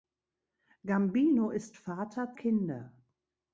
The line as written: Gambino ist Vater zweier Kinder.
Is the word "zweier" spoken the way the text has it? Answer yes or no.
no